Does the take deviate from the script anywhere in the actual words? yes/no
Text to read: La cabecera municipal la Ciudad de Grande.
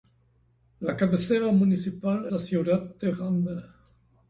no